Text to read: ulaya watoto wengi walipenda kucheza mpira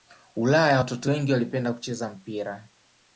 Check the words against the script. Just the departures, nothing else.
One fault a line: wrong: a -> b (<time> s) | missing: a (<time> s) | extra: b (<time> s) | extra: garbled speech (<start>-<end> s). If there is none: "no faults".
no faults